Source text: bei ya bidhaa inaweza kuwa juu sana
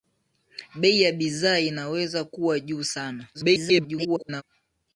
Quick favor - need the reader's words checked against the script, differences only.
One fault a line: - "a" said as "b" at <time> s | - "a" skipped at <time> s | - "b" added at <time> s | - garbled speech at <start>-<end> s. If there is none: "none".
- garbled speech at 3.3-4.4 s